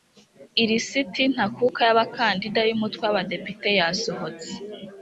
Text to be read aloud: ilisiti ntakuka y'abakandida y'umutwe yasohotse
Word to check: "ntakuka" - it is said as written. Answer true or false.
true